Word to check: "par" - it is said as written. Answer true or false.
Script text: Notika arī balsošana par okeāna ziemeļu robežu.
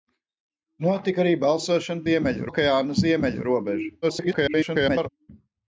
false